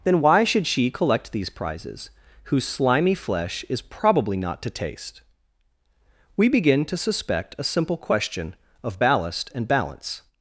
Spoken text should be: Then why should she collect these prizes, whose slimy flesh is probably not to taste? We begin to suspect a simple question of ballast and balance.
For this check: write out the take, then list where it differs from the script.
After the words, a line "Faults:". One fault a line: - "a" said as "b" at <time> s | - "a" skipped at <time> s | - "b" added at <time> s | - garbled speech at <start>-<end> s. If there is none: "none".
Then why should she collect these prizes, whose slimy flesh is probably not to taste? We begin to suspect a simple question of ballast and balance.
Faults:
none